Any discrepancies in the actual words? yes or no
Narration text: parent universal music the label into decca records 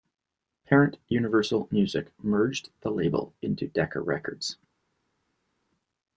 yes